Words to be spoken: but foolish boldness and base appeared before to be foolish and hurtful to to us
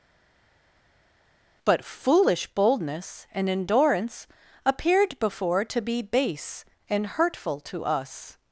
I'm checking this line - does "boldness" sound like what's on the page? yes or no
yes